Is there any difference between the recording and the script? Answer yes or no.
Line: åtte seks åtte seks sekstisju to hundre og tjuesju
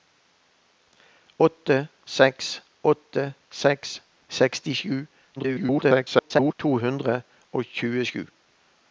yes